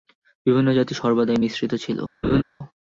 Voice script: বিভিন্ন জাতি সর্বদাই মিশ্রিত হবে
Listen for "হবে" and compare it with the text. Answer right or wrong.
wrong